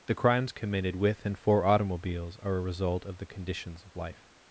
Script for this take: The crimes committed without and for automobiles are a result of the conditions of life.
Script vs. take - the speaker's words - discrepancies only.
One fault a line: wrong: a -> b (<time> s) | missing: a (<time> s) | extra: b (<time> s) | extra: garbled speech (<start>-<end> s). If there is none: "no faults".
wrong: without -> with (0.9 s)